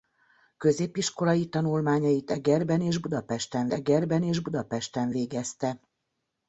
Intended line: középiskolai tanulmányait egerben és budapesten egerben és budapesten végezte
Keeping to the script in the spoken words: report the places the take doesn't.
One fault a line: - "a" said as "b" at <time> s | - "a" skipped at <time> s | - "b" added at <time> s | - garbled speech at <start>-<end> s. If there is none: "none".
none